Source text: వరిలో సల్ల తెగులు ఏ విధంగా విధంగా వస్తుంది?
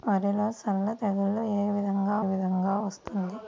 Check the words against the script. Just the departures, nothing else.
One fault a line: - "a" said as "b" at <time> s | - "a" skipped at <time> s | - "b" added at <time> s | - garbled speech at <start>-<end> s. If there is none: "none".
none